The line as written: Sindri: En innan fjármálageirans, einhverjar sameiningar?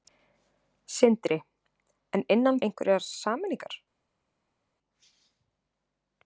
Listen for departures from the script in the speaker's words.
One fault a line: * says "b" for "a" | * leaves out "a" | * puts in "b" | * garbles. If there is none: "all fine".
* leaves out "fjármálageirans"